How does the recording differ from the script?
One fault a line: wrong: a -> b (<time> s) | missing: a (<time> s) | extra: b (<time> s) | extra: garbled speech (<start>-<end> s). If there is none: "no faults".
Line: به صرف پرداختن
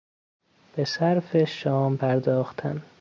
extra: شام (1.4 s)